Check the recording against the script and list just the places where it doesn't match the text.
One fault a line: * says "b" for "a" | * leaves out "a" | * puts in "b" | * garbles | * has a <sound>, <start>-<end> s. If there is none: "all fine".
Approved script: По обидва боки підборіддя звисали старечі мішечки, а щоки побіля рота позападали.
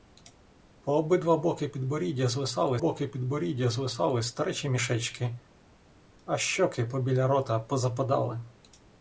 * puts in "боки підборіддя звисали"